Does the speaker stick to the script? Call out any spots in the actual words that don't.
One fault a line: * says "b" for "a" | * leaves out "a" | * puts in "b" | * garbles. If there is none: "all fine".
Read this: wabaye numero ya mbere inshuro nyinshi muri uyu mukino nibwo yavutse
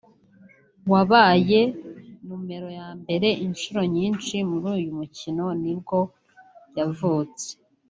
all fine